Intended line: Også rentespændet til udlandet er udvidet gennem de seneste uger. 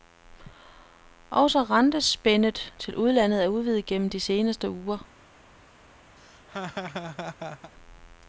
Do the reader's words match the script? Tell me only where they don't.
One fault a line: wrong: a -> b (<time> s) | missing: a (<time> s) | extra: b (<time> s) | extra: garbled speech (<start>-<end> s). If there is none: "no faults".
no faults